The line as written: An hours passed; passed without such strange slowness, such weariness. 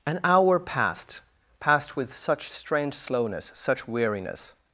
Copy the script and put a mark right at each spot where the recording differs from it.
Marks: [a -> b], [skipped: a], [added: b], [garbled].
An [hours -> hour] passed; passed [without -> with] such strange slowness, such weariness.